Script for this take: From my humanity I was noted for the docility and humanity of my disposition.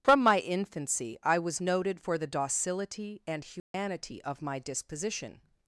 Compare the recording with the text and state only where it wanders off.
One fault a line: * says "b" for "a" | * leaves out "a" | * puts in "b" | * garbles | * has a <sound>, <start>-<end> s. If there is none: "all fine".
* says "infancy" for "humanity"
* has a dropout, 3.6-3.7 s